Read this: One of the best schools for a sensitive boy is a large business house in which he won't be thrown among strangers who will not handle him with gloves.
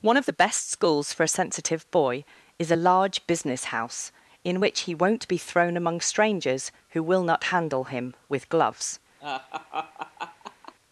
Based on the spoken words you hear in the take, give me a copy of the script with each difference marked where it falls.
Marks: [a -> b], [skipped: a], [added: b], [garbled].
One of the best schools for a sensitive boy is a large business house in which he won't be thrown among strangers who will not handle him with gloves.